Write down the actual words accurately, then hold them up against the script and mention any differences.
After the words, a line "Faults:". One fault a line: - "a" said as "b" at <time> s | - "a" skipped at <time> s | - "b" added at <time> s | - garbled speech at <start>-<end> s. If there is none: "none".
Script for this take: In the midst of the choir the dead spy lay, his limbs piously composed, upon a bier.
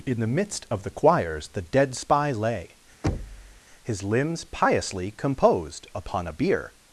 In the midst of the choirs the dead spy lay, his limbs piously composed, upon a bier.
Faults:
- "choir" said as "choirs" at 0.9 s